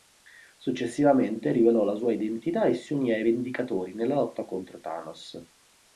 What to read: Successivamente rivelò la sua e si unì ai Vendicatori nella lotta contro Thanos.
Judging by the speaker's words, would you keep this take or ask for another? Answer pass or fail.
fail